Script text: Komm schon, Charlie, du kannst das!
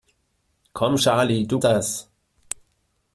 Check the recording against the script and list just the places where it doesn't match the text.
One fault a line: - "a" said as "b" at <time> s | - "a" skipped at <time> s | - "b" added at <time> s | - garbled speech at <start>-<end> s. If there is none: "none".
- "schon" skipped at 1.0 s
- "kannst" skipped at 1.6 s